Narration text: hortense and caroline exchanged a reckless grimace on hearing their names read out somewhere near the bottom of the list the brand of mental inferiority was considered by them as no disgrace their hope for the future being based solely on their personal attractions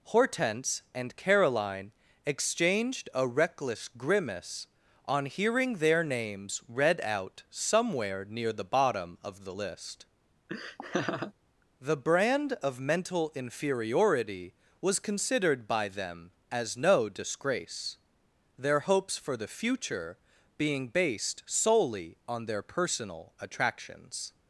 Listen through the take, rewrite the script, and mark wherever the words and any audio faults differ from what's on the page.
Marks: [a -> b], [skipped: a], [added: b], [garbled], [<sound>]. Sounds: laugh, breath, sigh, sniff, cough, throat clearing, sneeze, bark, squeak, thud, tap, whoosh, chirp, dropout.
hortense and caroline exchanged a reckless grimace on hearing their names read out somewhere near the bottom of the list [laugh] the brand of mental inferiority was considered by them as no disgrace their [hope -> hopes] for the future being based solely on their personal attractions